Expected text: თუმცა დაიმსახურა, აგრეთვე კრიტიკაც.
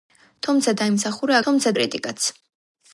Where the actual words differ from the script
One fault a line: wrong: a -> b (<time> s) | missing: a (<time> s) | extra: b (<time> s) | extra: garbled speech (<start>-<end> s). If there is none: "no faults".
wrong: აგრეთვე -> თუმცა (1.5 s)